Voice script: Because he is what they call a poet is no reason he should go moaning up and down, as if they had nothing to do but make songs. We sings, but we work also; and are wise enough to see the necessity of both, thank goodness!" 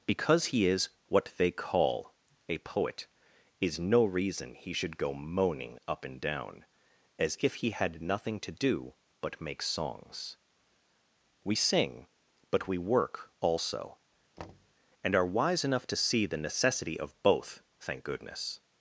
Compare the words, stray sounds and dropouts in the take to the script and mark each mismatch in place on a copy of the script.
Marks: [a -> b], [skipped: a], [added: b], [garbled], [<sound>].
Because he is what they call a poet is no reason he should go moaning up and down, as if [they -> he] had nothing to do but make songs. We [sings, -> sing] but we work also; [thud] and are wise enough to see the necessity of both, thank goodness!"